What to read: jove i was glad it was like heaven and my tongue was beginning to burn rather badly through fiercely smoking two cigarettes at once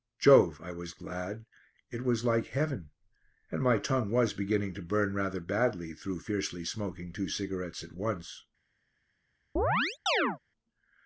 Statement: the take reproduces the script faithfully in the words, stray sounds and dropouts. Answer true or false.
false